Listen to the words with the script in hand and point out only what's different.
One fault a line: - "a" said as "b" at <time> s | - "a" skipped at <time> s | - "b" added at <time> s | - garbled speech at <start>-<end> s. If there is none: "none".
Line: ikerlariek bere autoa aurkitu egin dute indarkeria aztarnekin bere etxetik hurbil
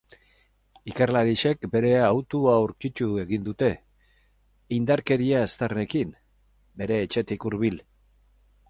none